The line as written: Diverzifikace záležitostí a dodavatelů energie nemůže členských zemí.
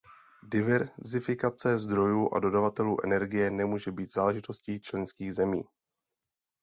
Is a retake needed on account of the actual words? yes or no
yes